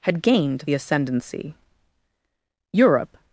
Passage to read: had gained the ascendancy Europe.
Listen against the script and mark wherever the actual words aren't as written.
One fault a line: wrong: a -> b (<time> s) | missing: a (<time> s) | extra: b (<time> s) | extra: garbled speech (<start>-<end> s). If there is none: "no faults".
no faults